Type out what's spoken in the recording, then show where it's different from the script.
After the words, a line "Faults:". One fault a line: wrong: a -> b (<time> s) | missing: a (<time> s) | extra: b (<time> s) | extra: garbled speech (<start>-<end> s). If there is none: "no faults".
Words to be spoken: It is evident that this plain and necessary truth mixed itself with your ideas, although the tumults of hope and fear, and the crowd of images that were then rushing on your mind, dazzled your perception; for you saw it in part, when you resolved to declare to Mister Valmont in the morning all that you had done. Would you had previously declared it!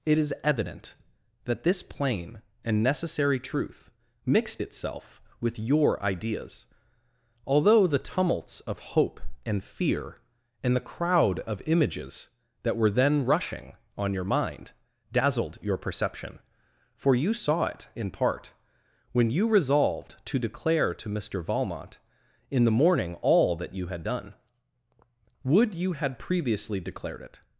It is evident that this plain and necessary truth mixed itself with your ideas, although the tumults of hope and fear, and the crowd of images that were then rushing on your mind, dazzled your perception; for you saw it in part, when you resolved to declare to Mister Valmont in the morning all that you had done. Would you had previously declared it!
Faults:
no faults